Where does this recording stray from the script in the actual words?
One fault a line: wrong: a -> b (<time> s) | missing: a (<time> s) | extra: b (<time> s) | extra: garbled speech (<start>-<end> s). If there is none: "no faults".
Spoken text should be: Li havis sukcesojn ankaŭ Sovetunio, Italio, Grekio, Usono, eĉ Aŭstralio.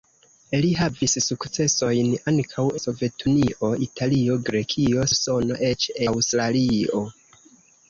no faults